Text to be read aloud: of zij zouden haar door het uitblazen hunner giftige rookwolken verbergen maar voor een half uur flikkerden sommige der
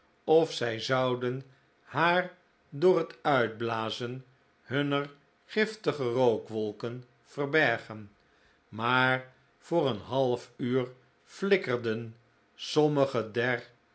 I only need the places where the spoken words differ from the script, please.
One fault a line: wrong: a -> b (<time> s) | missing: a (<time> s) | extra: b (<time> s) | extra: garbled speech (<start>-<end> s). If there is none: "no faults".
no faults